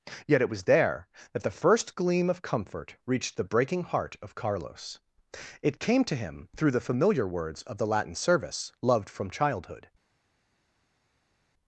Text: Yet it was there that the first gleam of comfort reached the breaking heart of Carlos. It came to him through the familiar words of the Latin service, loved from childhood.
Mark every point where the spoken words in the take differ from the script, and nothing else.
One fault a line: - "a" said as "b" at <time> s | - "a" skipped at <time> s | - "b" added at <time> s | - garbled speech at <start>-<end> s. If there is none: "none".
none